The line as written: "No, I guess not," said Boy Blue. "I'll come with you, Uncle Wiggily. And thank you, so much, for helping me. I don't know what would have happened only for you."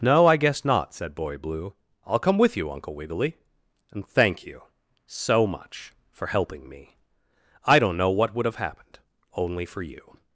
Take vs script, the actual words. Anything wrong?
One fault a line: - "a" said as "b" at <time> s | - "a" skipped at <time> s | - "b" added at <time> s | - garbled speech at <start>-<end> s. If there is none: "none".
none